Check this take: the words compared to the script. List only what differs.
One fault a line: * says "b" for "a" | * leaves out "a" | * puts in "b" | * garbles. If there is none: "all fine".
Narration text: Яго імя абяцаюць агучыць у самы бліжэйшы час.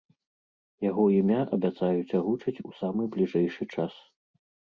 all fine